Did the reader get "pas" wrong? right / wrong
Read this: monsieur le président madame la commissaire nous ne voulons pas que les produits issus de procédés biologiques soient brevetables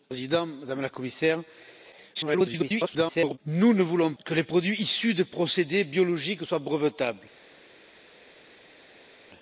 wrong